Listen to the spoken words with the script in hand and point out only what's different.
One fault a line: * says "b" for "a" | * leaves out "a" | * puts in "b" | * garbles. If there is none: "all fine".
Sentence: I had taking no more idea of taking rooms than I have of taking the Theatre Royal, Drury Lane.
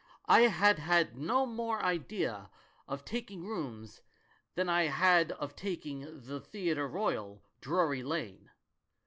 * says "had" for "taking"
* says "had" for "have"